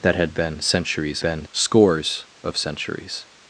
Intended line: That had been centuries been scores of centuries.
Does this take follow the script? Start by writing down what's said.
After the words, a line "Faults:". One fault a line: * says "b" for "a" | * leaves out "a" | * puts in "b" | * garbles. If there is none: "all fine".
That had been centuries been scores of centuries.
Faults:
all fine